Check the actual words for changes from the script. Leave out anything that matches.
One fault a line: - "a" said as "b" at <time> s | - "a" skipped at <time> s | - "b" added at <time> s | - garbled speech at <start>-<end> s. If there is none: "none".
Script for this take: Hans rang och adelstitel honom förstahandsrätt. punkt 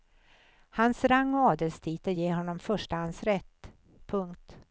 - "ger" added at 2.1 s